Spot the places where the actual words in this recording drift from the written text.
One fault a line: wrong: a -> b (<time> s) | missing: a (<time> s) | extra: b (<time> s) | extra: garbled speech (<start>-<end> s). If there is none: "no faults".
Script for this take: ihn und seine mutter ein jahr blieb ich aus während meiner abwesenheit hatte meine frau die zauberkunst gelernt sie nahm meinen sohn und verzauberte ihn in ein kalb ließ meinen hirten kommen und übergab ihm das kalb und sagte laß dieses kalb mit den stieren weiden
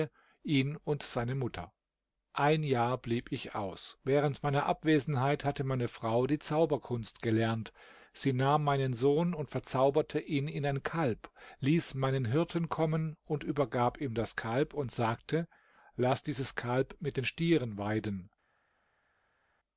no faults